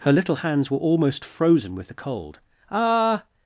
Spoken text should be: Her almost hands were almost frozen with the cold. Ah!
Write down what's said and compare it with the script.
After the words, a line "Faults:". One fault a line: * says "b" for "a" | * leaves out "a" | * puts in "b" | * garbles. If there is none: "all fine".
Her little hands were almost frozen with the cold. Ah!
Faults:
* says "little" for "almost"